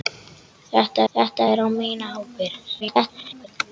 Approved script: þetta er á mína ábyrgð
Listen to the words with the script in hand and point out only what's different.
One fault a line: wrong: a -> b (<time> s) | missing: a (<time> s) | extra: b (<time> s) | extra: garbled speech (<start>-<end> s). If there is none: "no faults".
extra: þetta (1.1 s)
extra: garbled speech (2.8-3.5 s)